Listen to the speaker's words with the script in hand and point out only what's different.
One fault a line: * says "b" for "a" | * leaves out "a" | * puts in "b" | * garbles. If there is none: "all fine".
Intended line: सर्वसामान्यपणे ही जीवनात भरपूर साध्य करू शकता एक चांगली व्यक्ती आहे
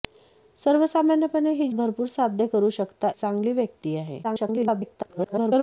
* leaves out "जीवनात"
* leaves out "एक"
* garbles